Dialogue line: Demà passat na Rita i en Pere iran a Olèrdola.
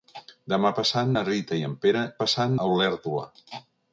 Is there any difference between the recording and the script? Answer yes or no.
yes